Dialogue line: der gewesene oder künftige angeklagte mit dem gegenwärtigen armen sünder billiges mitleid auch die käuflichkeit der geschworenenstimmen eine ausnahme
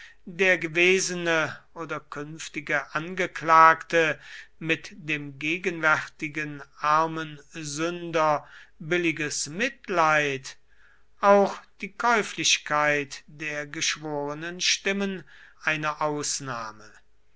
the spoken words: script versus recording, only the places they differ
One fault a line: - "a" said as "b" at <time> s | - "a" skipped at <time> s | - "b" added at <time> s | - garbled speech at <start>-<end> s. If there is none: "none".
none